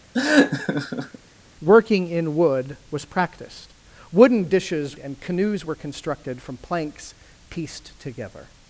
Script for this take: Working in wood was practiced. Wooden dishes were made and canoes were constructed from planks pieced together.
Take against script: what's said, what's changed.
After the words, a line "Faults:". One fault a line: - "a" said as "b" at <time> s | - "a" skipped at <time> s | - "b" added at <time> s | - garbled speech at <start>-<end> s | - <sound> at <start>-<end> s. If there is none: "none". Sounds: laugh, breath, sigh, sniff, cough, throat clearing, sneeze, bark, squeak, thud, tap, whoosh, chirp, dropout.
Working in wood was practiced. Wooden dishes and canoes were constructed from planks pieced together.
Faults:
- laugh at 0.1-1.2 s
- "were made" skipped at 5.0 s